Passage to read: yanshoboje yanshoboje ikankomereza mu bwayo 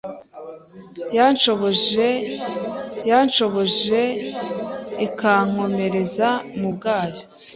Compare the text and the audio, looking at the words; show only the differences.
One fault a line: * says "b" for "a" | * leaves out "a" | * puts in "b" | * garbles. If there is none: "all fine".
all fine